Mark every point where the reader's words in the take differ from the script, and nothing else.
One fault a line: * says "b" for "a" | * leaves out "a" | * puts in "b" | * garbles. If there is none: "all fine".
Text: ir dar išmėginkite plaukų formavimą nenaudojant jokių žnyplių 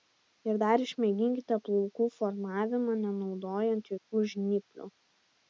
all fine